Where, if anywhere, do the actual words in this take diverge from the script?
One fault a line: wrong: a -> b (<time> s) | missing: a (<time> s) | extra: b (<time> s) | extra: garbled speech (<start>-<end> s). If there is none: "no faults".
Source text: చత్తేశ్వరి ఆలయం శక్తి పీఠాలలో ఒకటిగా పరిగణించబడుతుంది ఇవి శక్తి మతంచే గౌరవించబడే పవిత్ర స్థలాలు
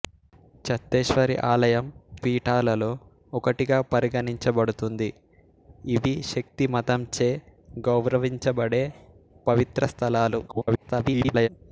missing: శక్తి (1.9 s)
extra: garbled speech (10.5-11.5 s)